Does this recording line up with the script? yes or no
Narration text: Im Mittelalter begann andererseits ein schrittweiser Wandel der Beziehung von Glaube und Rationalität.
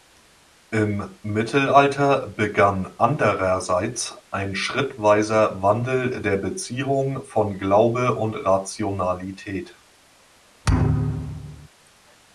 yes